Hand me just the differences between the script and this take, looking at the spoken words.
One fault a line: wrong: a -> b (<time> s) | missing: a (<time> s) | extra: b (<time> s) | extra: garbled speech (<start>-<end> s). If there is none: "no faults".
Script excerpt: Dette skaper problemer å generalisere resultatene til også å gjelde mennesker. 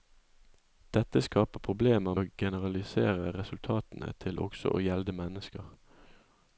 no faults